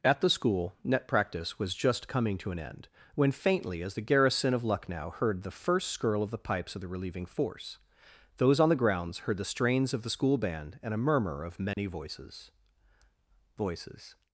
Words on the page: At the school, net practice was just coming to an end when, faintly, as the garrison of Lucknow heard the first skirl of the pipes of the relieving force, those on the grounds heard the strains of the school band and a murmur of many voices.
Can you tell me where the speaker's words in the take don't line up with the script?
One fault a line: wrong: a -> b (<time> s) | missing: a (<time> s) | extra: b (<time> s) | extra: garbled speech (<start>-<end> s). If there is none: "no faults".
extra: voices (13.6 s)